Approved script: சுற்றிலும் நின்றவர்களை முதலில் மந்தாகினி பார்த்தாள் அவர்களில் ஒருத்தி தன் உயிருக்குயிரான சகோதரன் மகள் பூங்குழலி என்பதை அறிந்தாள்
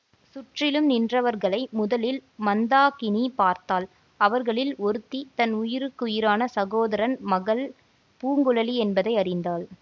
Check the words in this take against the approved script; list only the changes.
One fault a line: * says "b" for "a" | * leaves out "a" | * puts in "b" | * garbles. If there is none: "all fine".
all fine